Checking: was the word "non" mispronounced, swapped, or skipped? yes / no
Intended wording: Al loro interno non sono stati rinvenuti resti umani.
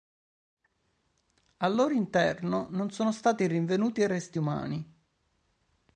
no